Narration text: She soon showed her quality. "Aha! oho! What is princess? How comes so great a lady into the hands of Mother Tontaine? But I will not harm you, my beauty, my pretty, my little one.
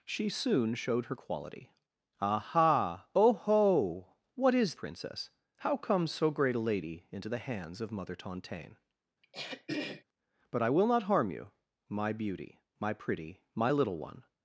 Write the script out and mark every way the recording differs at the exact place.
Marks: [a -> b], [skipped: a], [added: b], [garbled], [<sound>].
She soon showed her quality. "Aha! oho! What is princess? How comes so great a lady into the hands of Mother Tontaine? [throat clearing] But I will not harm you, my beauty, my pretty, my little one.